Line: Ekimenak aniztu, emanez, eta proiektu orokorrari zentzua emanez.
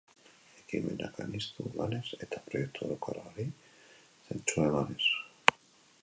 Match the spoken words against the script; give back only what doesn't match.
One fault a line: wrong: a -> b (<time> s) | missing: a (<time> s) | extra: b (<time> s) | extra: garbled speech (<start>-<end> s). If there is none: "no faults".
no faults